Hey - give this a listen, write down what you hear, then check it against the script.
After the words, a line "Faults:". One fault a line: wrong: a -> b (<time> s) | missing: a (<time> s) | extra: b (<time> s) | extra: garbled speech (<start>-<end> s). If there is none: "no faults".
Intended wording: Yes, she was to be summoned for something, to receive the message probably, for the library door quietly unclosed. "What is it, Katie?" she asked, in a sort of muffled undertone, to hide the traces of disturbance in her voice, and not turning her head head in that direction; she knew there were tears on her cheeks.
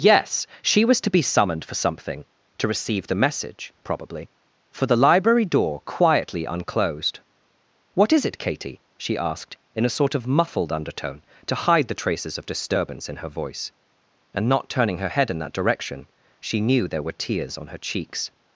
Yes, she was to be summoned for something, to receive the message probably, for the library door quietly unclosed. "What is it, Katie?" she asked, in a sort of muffled undertone, to hide the traces of disturbance in her voice, and not turning her head in that direction; she knew there were tears on her cheeks.
Faults:
missing: head (15.3 s)